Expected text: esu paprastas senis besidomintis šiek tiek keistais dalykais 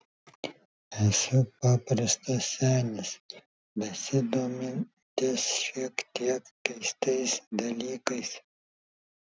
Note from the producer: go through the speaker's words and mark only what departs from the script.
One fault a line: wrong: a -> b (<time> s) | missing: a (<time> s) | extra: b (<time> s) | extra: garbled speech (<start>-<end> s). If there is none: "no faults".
no faults